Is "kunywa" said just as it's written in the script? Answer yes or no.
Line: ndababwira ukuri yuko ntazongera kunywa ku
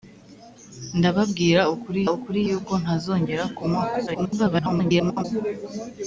yes